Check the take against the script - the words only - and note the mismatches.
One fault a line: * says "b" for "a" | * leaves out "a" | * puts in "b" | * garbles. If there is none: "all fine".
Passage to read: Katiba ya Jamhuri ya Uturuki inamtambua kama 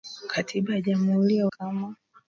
* leaves out "Uturuki inamtambua"